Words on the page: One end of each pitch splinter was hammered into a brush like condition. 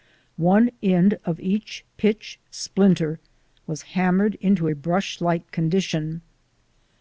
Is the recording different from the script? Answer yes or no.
no